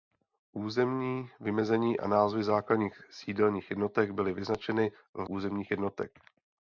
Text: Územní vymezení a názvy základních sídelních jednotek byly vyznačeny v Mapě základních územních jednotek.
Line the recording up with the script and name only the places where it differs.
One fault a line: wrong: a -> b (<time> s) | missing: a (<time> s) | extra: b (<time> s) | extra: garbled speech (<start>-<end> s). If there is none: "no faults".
missing: Mapě základních (5.3 s)